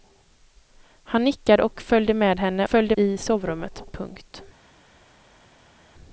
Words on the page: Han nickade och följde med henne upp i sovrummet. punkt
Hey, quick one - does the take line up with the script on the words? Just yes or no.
no